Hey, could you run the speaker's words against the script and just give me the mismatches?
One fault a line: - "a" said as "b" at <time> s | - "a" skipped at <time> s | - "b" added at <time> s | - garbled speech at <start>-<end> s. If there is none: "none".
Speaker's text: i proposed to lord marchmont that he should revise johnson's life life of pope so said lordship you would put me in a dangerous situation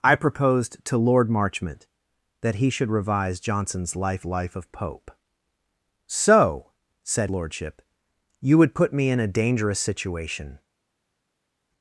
none